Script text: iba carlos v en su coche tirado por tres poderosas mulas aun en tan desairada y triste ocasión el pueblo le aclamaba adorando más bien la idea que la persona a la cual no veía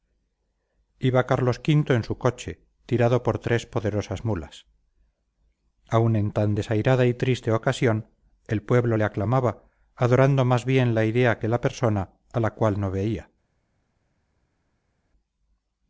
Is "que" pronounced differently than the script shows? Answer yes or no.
no